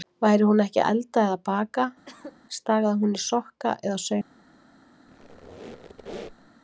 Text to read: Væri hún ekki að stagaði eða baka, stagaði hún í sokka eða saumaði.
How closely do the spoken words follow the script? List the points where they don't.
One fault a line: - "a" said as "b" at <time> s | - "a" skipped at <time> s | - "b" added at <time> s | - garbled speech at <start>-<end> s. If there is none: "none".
- "stagaði" said as "elda" at 0.9 s